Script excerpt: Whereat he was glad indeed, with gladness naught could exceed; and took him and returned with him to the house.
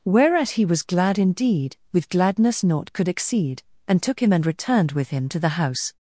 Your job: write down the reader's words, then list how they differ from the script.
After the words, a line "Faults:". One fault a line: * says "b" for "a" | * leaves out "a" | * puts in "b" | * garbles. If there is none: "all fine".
Whereat he was glad indeed, with gladness naught could exceed; and took him and returned with him to the house.
Faults:
all fine